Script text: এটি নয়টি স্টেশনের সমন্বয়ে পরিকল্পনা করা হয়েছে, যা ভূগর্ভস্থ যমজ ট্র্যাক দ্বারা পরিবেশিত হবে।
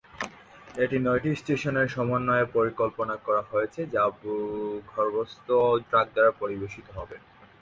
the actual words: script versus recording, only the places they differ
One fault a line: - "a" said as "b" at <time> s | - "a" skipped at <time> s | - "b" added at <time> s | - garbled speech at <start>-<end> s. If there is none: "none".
- "যমজ" skipped at 5.5 s